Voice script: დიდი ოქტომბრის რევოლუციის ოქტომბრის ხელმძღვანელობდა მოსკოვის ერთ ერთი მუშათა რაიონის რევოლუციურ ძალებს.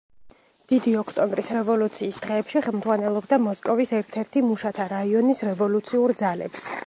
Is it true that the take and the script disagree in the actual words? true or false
true